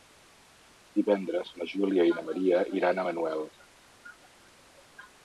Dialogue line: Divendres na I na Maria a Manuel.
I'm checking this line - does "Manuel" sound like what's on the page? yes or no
yes